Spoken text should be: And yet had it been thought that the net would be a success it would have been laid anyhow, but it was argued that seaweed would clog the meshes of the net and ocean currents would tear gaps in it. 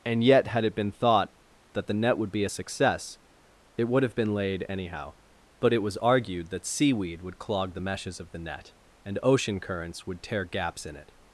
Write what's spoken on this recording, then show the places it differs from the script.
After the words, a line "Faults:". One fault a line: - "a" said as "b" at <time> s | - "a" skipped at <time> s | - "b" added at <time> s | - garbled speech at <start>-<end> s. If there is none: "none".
And yet had it been thought that the net would be a success it would have been laid anyhow, but it was argued that seaweed would clog the meshes of the net and ocean currents would tear gaps in it.
Faults:
none